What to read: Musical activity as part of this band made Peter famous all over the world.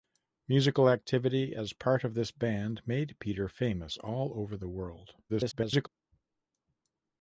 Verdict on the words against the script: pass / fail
fail